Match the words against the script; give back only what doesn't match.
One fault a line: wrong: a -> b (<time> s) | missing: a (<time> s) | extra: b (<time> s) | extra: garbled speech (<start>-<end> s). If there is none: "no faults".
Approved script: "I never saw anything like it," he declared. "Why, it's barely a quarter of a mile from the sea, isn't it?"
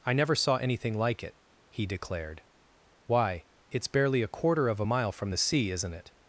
no faults